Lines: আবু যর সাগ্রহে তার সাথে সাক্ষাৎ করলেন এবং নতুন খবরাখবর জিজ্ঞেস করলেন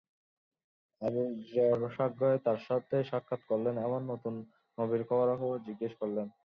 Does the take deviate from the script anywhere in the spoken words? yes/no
yes